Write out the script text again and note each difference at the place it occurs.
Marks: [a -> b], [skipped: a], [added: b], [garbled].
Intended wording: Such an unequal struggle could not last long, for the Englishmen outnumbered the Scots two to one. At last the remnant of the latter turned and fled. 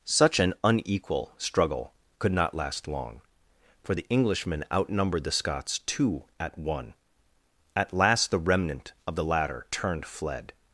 Such an unequal struggle could not last long, for the Englishmen outnumbered the Scots two [to -> at] one. At last the remnant of the latter turned [skipped: and] fled.